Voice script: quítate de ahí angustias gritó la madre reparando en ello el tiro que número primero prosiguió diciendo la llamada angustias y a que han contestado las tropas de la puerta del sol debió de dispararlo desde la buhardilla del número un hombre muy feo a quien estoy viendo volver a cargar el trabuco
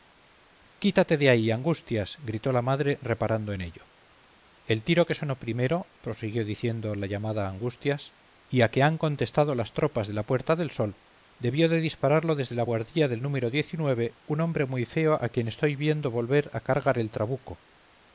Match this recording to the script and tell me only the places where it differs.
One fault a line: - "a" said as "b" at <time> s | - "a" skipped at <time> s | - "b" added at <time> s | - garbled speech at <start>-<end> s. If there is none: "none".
- "número" said as "sonó" at 5.2 s